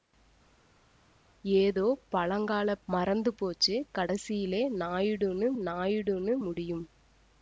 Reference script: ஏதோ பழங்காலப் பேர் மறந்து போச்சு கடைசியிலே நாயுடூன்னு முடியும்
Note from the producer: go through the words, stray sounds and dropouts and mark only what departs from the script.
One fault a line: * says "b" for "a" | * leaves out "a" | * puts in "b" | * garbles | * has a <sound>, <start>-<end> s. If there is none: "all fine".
* leaves out "பேர்"
* puts in "நாயுடூன்னு"